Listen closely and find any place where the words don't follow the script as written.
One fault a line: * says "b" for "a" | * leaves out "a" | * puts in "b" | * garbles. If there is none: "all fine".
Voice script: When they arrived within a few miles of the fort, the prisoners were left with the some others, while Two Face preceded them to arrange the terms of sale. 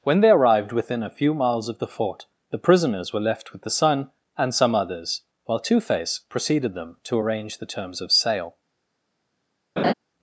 * puts in "son and"